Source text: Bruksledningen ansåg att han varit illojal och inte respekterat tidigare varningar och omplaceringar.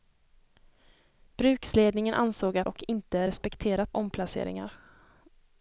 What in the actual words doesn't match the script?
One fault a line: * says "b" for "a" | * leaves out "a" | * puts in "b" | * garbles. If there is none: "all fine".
* leaves out "han varit illojal"
* leaves out "tidigare varningar och"